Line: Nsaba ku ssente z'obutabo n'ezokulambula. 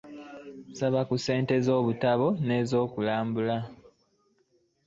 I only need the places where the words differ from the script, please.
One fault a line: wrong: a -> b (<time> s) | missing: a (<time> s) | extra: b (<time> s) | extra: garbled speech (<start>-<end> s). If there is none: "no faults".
no faults